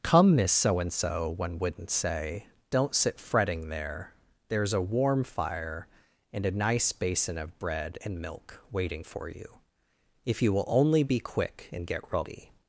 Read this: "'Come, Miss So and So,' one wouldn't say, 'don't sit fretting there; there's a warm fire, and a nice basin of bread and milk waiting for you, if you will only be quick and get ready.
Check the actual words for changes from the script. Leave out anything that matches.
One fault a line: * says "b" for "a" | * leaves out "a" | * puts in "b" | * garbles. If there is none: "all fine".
all fine